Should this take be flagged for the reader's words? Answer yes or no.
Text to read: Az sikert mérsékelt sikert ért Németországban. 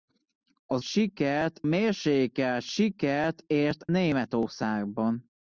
no